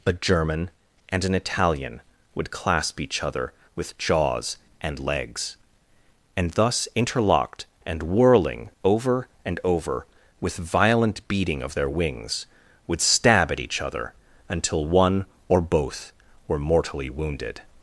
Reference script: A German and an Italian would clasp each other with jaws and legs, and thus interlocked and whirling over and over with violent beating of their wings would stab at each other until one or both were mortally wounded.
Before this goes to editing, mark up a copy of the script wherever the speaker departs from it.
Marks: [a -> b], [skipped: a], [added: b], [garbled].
A German and an Italian would clasp each other with jaws and legs, and thus interlocked and whirling over and over with violent beating of their wings would stab at each other until one or both were mortally wounded.